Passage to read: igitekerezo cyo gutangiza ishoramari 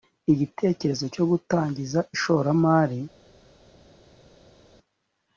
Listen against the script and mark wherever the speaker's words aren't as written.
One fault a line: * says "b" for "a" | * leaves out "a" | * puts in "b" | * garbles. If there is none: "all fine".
all fine